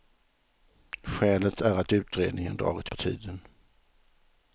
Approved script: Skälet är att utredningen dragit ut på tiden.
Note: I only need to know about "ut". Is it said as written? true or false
false